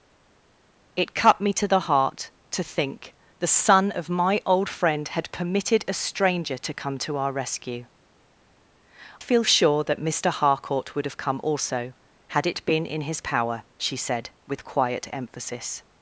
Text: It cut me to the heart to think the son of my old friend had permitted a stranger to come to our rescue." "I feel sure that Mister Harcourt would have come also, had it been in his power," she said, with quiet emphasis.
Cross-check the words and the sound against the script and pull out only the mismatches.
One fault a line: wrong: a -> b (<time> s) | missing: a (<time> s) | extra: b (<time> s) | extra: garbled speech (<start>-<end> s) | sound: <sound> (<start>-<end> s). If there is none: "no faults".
missing: I (7.8 s)